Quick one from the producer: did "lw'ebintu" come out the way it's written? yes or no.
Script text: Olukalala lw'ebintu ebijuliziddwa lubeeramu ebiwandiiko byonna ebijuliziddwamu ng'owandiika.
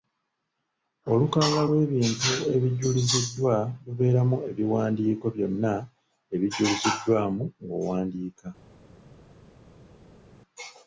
yes